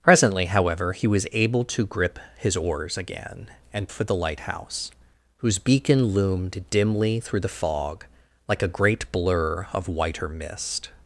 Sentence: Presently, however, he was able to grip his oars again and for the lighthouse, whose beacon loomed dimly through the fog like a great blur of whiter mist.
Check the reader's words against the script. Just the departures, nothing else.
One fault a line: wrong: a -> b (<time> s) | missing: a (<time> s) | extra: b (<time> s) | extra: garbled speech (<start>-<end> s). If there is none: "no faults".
no faults